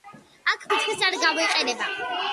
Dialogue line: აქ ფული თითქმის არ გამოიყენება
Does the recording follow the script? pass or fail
fail